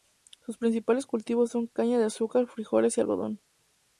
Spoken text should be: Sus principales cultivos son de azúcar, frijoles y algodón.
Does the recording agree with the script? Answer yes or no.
no